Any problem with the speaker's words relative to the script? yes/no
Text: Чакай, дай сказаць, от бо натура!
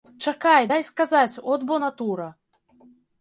no